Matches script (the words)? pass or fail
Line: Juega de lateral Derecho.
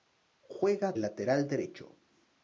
fail